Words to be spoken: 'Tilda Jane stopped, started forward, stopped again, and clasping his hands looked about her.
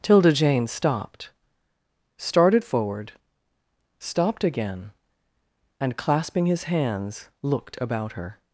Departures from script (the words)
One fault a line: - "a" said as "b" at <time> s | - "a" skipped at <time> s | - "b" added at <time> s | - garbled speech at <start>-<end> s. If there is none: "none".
none